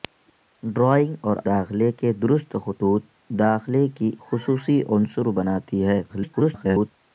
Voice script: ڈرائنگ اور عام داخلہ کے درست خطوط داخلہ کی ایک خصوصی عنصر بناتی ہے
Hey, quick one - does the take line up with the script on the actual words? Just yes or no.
no